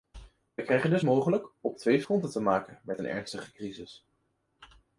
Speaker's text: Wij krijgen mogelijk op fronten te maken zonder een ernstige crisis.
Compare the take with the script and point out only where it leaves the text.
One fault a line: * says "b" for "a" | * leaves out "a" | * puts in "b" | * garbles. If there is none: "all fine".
* puts in "dus"
* puts in "twee"
* says "met" for "zonder"